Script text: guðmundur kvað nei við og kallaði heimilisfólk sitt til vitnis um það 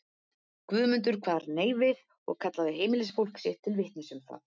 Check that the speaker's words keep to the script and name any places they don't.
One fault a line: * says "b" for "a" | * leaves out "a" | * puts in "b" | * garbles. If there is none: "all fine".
all fine